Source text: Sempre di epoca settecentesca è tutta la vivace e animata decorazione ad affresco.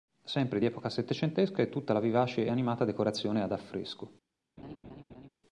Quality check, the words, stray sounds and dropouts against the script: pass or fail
fail